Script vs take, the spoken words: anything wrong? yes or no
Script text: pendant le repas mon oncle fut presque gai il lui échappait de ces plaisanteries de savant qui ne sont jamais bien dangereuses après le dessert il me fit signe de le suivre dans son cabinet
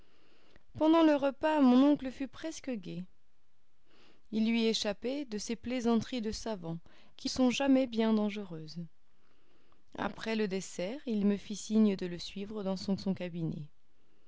yes